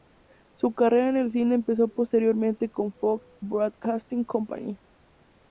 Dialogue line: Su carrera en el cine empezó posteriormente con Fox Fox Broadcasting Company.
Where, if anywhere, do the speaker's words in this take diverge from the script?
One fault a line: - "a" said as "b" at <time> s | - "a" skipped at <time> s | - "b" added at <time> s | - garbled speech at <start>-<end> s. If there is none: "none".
- "Fox" skipped at 3.3 s